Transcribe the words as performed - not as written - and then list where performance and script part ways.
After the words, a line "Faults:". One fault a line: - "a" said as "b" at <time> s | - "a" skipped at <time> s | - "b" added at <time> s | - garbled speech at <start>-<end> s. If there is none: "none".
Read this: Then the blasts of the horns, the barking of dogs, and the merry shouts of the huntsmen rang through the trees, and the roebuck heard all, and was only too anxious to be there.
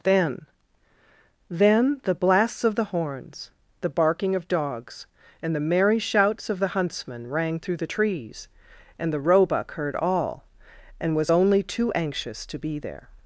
Then then the blasts of the horns, the barking of dogs, and the merry shouts of the huntsmen rang through the trees, and the roebuck heard all, and was only too anxious to be there.
Faults:
- "then" added at 1.5 s